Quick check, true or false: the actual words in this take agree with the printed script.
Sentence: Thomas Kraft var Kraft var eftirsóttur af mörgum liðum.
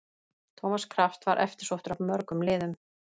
false